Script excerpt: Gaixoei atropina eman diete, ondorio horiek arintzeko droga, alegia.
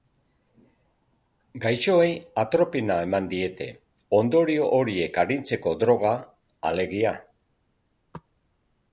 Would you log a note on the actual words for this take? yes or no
no